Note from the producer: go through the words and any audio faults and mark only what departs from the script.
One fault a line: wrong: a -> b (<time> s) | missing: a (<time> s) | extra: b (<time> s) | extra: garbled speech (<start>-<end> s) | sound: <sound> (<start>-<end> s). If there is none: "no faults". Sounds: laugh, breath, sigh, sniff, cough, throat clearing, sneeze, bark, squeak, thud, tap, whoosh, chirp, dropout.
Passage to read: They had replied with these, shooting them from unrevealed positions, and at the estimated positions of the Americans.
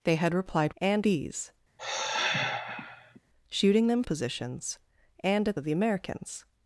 wrong: with -> and (0.8 s)
sound: sigh (1.8-3.2 s)
missing: from unrevealed (4.0 s)
missing: the estimated positions (5.6 s)